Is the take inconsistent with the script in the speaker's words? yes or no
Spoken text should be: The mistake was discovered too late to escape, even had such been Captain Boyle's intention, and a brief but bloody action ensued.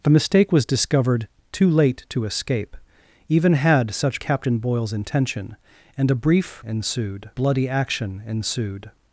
yes